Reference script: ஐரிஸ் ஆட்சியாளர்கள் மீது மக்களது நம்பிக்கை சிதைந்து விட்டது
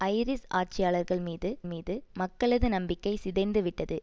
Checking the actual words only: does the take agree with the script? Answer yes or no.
no